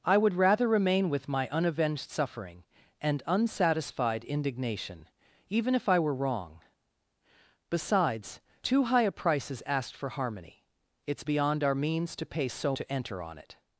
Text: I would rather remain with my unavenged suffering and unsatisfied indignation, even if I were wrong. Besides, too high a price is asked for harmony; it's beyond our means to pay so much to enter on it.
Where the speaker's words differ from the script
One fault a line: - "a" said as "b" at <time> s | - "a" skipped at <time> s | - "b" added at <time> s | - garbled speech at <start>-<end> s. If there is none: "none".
- "much" skipped at 12.8 s